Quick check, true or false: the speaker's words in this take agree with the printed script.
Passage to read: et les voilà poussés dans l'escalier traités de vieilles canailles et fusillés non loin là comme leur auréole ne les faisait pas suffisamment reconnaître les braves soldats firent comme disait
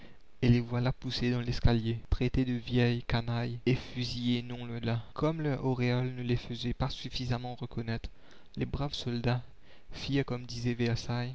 true